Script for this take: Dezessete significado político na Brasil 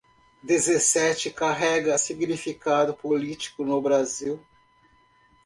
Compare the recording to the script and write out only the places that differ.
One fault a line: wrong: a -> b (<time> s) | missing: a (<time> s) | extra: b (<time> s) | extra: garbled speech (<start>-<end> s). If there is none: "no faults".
extra: carrega (1.3 s)
wrong: na -> no (3.6 s)